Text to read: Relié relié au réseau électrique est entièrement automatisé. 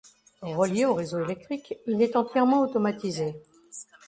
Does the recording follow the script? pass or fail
fail